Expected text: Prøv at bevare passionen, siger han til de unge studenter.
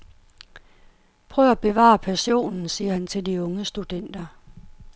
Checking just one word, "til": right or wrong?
right